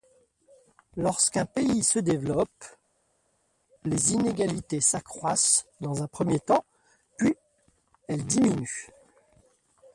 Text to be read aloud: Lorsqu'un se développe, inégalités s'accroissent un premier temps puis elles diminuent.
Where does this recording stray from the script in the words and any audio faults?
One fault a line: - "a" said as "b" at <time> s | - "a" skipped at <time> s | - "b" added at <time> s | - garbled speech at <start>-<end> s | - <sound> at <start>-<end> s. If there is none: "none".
- "pays" added at 1.4 s
- "les" added at 3.8 s
- "dans" added at 5.8 s